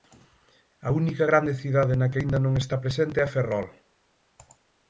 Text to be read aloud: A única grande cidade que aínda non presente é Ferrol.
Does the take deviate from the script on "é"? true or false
false